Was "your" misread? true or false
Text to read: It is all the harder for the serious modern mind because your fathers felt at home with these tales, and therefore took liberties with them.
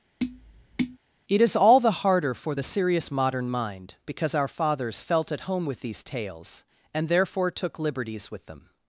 true